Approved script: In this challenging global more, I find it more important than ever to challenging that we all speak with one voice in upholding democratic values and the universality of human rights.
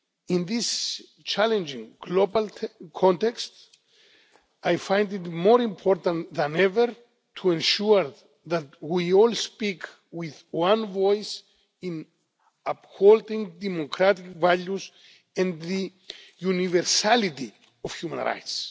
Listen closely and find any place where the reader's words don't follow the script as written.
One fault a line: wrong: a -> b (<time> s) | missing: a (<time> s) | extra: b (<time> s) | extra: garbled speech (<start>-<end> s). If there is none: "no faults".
wrong: more -> context (3.0 s)
wrong: challenging -> ensure (7.5 s)